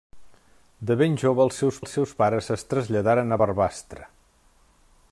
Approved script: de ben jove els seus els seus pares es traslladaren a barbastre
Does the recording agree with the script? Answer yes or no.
yes